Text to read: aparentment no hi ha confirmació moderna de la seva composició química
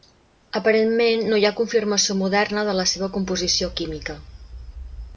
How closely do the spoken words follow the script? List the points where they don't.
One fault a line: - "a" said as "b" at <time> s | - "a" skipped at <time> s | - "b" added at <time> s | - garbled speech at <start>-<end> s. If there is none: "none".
none